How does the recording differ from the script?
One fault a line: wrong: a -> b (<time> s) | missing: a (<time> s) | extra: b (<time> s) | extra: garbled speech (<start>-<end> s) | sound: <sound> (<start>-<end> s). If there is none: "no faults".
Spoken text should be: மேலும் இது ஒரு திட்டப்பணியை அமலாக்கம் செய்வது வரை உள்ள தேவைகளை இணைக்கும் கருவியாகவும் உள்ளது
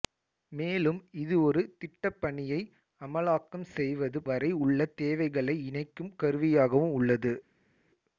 no faults